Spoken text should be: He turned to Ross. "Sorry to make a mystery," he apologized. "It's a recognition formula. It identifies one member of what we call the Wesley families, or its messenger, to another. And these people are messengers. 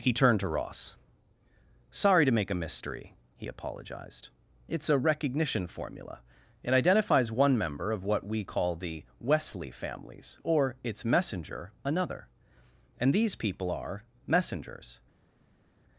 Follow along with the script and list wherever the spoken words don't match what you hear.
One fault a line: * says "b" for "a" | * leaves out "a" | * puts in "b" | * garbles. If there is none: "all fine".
* leaves out "to"